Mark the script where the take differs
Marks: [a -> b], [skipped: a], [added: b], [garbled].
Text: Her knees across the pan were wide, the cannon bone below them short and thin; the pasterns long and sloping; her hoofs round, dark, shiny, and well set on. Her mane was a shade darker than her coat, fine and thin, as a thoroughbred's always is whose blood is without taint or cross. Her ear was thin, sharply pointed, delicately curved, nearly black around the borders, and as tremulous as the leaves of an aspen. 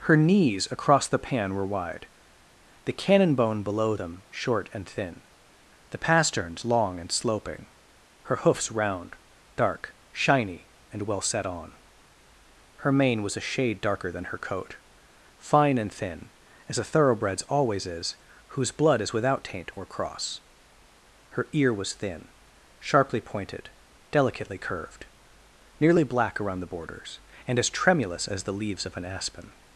Her knees across the pan were wide, the cannon bone below them short and thin; the pasterns long and sloping; her hoofs round, dark, shiny, and well set on. Her mane was a shade darker than her coat, fine and thin, as a thoroughbred's always is whose blood is without taint or cross. Her ear was thin, sharply pointed, delicately curved, nearly black around the borders, and as tremulous as the leaves of an aspen.